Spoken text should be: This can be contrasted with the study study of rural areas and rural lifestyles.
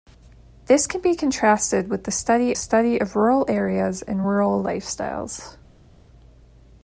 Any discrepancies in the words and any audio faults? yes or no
no